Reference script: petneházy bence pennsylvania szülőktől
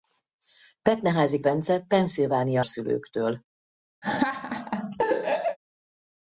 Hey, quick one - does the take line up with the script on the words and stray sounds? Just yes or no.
no